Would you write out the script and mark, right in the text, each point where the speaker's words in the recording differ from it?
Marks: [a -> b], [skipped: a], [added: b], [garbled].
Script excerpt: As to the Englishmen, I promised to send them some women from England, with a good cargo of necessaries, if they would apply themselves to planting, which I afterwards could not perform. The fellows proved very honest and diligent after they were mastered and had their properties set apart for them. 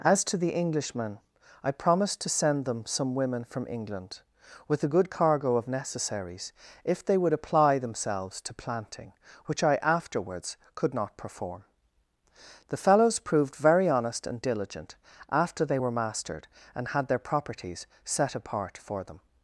As to the Englishmen, I promised to send them some women from England, with a good cargo of necessaries, if they would apply themselves to planting, which I afterwards could not perform. The fellows proved very honest and diligent after they were mastered and had their properties set apart for them.